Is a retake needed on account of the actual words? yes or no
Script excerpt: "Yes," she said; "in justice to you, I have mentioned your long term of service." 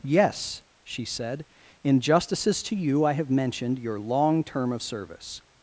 yes